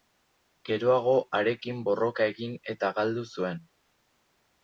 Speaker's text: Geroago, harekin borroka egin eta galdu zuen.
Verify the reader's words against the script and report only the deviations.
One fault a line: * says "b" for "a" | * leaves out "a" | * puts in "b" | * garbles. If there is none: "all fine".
all fine